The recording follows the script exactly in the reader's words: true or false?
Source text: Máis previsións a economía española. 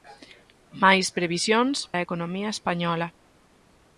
true